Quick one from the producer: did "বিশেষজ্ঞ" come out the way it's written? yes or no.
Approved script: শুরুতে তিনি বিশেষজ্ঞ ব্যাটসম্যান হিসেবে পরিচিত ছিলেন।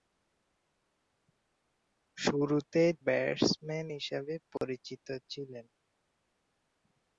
no